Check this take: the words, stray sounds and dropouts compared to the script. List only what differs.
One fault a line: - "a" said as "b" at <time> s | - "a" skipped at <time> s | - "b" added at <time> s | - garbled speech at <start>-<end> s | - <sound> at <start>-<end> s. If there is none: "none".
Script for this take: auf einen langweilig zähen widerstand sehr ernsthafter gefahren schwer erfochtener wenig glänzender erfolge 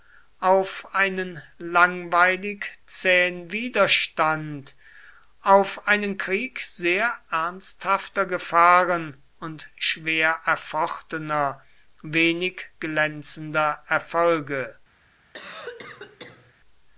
- "auf einen krieg" added at 5.4 s
- "und" added at 9.4 s
- cough at 15.3-16.5 s